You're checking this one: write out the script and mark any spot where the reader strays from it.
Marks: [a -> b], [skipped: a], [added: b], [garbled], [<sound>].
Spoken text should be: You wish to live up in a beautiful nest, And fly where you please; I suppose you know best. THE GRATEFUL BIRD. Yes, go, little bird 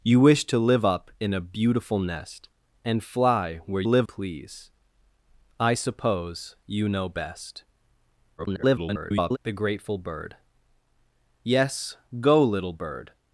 You wish to live up in a beautiful nest, And fly where [you -> live] please; I suppose you know best. [garbled] THE GRATEFUL BIRD. Yes, go, little bird